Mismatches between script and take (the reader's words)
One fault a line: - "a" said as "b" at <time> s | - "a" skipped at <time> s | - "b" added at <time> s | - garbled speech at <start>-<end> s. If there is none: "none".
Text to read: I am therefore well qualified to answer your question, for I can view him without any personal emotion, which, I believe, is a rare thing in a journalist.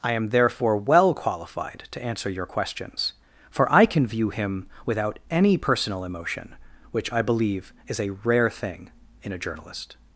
- "question" said as "questions" at 2.4 s